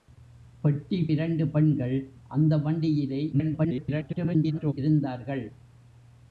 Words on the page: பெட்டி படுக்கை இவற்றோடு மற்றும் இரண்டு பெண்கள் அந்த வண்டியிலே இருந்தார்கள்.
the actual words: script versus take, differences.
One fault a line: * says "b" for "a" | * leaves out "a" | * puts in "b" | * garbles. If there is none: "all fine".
* leaves out "படுக்கை இவற்றோடு மற்றும்"
* garbles